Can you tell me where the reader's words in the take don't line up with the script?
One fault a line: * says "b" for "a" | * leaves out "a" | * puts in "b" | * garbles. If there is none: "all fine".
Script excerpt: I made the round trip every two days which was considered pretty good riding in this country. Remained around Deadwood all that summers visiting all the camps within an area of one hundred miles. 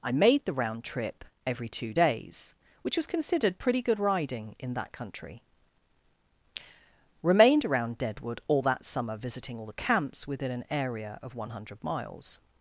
* says "that" for "this"
* says "summer" for "summers"